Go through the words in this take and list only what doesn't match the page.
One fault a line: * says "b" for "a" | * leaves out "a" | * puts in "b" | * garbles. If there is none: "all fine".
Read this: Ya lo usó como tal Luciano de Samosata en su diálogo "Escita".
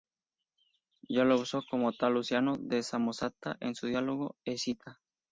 all fine